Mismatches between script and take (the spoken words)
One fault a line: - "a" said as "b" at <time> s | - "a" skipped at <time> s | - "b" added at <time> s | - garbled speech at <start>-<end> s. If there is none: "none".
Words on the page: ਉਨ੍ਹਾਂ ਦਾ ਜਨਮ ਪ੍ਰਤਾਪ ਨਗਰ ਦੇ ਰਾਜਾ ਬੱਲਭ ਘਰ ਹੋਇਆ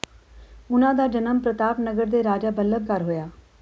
none